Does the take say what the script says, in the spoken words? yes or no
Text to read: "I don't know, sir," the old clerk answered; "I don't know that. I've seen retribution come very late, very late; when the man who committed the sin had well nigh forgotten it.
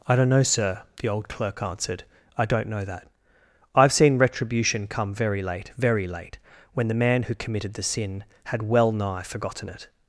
yes